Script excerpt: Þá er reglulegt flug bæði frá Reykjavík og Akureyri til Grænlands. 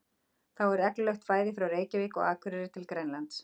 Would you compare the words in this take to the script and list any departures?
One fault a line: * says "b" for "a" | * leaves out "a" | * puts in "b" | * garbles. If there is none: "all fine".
* leaves out "flug"